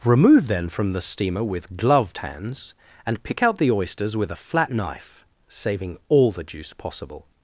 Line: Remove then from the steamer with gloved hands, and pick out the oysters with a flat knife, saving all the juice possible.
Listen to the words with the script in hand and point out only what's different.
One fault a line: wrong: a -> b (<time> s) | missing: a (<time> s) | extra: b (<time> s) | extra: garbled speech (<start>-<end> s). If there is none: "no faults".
no faults